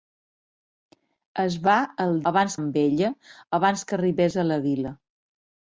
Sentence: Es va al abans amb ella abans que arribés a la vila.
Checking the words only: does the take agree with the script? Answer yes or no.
yes